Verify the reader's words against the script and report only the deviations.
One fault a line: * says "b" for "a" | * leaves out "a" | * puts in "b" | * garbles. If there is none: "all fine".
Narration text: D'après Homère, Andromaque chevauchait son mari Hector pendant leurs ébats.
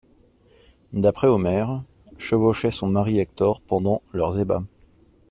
* leaves out "Andromaque"